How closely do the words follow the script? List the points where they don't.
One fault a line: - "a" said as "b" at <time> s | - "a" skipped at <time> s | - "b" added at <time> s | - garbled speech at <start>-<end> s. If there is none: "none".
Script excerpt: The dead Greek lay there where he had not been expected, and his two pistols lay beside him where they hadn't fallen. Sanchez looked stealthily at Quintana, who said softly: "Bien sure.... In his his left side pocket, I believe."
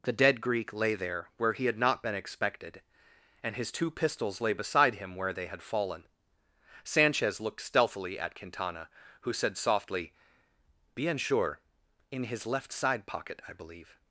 - "hadn't" said as "had" at 5.5 s
- "his" skipped at 12.4 s